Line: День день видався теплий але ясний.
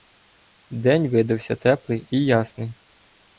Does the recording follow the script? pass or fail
fail